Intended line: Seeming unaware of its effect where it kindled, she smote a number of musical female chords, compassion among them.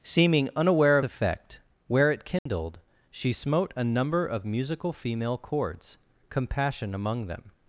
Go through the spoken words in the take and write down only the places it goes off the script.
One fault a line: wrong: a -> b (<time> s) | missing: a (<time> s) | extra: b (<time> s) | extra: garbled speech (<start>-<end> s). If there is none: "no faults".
missing: its (1.1 s)